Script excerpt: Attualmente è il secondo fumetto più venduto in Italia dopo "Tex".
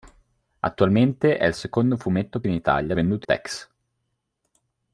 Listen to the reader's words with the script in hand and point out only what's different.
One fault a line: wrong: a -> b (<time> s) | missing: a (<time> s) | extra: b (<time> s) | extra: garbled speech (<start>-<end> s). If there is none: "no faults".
missing: più venduto (2.4 s)
wrong: dopo -> venduto (2.9 s)